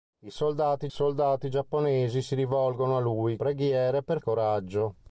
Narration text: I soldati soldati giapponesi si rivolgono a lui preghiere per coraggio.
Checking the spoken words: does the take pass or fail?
pass